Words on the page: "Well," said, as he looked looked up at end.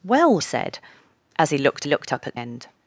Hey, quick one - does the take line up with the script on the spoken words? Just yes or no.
yes